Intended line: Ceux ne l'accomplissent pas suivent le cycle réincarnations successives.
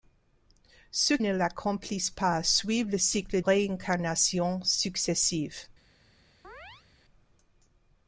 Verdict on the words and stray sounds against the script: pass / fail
fail